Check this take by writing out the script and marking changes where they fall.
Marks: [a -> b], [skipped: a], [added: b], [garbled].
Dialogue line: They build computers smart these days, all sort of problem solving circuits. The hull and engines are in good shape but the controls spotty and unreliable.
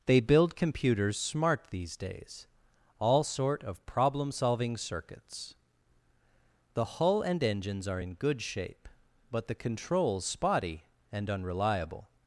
They build computers smart these days, all sort of problem solving circuits. The hull and engines are in good shape but the controls spotty and unreliable.